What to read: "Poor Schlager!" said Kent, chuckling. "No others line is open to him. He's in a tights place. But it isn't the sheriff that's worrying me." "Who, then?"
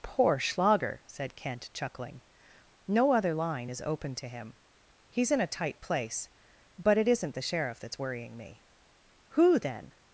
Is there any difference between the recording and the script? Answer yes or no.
yes